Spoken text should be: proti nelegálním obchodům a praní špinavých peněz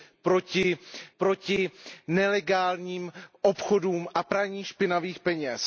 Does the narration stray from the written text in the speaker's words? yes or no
yes